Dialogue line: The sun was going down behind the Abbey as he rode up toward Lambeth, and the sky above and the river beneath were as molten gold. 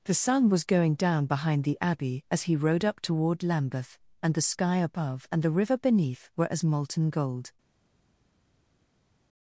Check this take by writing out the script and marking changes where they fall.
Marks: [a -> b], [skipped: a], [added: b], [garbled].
The sun was going down behind the Abbey as he rode up toward Lambeth, and the sky above and the river beneath were as molten gold.